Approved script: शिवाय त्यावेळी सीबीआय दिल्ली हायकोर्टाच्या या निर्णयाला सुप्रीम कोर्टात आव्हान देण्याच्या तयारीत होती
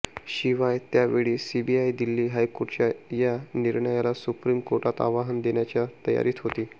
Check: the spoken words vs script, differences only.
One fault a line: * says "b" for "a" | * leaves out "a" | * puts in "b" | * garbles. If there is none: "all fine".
all fine